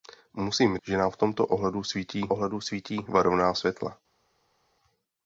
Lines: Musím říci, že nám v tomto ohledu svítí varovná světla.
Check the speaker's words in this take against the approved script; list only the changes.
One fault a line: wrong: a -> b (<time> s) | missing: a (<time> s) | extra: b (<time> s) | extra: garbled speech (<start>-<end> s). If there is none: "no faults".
missing: říci (0.8 s)
extra: ohledu svítí (2.2 s)